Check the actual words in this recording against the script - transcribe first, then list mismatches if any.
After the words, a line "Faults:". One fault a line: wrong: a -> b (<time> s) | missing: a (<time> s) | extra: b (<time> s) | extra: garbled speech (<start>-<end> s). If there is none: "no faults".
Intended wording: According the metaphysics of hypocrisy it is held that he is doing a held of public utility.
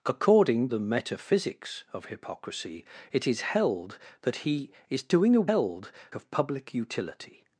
According the metaphysics of hypocrisy it is held that he is doing a held of public utility.
Faults:
no faults